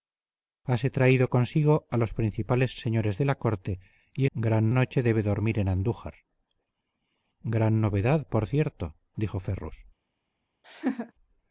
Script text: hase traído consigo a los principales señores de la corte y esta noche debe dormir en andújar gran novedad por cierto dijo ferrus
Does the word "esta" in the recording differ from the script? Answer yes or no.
yes